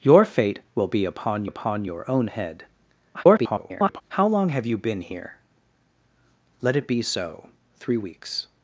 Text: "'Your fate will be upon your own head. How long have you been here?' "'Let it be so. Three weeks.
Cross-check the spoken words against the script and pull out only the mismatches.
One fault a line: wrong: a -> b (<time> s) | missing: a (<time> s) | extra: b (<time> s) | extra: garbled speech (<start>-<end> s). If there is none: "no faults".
extra: upon (1.4 s)
extra: garbled speech (3.1-4.0 s)